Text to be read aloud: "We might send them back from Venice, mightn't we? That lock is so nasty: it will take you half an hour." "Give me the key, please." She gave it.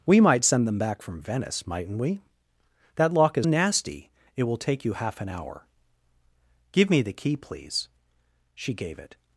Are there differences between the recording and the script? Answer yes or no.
yes